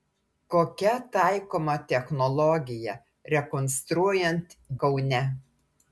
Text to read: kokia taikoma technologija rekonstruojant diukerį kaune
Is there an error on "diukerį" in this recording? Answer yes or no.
yes